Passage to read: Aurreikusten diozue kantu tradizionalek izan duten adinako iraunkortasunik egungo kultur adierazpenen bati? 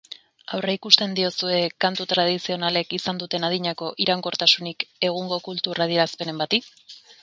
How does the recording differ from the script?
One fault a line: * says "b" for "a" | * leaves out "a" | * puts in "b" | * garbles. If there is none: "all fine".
all fine